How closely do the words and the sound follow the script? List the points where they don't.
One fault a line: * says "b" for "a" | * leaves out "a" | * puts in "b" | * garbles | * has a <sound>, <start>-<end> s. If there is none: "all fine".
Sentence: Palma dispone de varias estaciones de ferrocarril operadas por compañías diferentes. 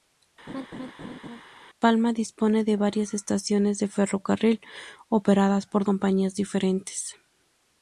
* has a laugh, 0.5-1.4 s